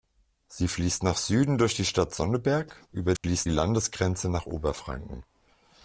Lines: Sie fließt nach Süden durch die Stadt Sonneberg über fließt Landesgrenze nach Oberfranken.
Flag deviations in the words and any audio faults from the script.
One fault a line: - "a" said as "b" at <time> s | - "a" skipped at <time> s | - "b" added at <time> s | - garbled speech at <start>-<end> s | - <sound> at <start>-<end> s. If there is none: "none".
- dropout at 3.2-3.2 s